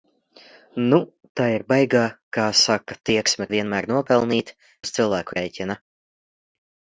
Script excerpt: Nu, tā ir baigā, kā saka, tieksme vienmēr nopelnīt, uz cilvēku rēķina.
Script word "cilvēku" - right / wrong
right